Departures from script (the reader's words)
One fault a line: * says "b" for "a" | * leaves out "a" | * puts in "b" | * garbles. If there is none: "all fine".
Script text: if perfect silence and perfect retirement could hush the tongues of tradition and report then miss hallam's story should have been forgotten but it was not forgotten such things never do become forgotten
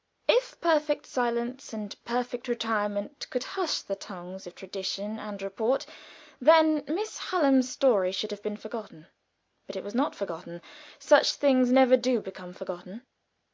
all fine